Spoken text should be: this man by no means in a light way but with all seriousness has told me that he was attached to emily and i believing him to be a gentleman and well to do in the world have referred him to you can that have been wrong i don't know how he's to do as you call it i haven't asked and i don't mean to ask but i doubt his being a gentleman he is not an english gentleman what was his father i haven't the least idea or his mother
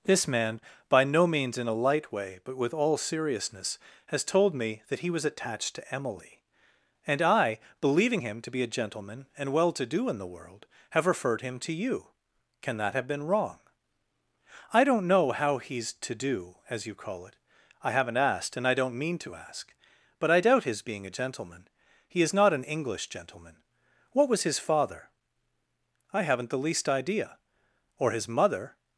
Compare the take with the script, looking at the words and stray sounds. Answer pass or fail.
pass